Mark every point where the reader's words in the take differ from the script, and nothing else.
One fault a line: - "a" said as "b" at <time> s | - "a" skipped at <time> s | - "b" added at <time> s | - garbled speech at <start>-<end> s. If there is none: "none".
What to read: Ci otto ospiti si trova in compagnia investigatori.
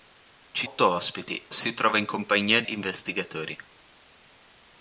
none